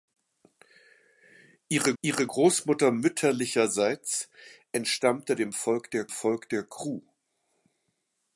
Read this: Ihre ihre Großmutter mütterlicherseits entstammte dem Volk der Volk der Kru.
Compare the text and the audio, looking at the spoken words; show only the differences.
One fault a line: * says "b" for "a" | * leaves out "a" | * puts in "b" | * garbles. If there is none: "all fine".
all fine